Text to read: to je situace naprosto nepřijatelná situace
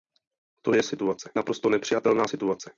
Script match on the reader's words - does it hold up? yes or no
yes